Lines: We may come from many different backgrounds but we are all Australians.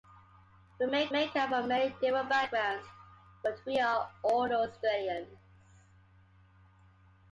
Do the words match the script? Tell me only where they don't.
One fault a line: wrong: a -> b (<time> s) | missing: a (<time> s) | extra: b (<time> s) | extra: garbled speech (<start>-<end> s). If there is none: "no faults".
extra: may (1.1 s)